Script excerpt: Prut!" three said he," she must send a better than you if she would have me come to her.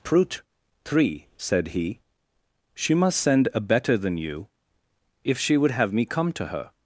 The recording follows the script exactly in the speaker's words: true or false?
true